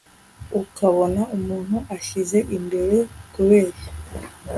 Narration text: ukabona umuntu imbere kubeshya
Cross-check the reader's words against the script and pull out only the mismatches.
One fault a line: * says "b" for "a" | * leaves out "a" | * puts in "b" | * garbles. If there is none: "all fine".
* puts in "ashyize"